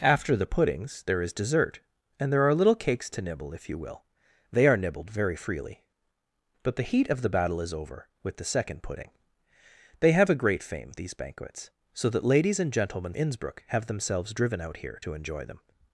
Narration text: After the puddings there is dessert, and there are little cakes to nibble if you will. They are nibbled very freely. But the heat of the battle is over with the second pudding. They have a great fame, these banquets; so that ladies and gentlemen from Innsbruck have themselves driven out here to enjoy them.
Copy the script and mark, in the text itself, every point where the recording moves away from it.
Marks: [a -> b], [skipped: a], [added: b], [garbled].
After the puddings there is dessert, and there are little cakes to nibble if you will. They are nibbled very freely. But the heat of the battle is over with the second pudding. They have a great fame, these banquets; so that ladies and gentlemen [skipped: from] Innsbruck have themselves driven out here to enjoy them.